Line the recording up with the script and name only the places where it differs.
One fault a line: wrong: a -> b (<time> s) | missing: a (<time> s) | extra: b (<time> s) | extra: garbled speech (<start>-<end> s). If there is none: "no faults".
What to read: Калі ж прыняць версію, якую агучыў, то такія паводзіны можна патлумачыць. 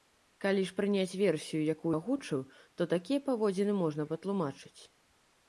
no faults